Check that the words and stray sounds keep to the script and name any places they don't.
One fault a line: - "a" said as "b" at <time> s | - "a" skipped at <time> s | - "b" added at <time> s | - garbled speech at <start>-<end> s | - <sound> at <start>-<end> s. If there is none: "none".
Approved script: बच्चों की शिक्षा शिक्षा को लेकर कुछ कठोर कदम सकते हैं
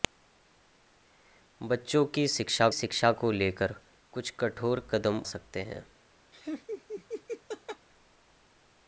- laugh at 6.3-7.9 s